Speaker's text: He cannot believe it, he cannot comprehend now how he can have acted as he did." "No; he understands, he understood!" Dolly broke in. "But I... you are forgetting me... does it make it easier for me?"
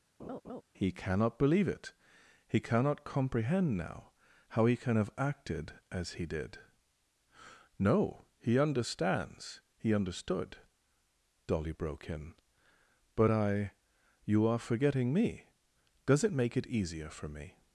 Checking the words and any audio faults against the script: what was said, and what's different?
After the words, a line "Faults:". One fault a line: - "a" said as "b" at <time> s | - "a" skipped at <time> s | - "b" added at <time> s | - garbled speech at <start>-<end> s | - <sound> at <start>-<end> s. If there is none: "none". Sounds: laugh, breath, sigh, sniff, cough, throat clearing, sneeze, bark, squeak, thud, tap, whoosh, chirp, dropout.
He cannot believe it, he cannot comprehend now how he can have acted as he did." "No; he understands, he understood!" Dolly broke in. "But I... you are forgetting me... does it make it easier for me?"
Faults:
- laugh at 0.2-0.6 s